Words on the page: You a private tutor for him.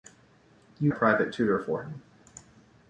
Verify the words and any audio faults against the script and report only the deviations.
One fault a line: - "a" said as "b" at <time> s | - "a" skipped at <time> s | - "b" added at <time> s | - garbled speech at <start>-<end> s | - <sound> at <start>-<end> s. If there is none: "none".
none